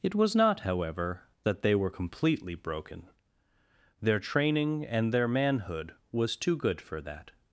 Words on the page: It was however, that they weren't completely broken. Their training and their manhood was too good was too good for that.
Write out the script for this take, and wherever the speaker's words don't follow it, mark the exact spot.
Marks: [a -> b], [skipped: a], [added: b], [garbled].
It was [added: not] however, that they [weren't -> were] completely broken. Their training and their manhood was too good [skipped: was too good] for that.